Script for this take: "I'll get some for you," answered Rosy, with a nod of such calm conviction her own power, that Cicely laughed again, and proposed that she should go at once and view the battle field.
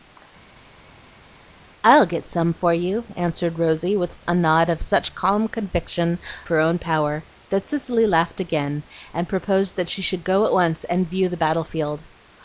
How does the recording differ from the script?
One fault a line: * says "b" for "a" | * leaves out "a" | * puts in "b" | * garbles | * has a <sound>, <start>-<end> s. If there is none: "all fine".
all fine